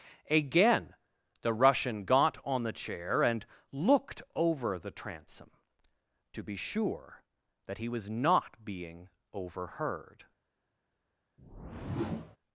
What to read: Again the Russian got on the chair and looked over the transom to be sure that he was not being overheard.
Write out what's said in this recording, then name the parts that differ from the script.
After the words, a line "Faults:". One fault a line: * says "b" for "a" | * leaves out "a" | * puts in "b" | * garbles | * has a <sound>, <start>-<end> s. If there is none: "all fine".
Again the Russian got on the chair and looked over the transom to be sure that he was not being overheard.
Faults:
* has a whoosh, 11.4-12.4 s